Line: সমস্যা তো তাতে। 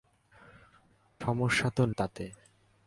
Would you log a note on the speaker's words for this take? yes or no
no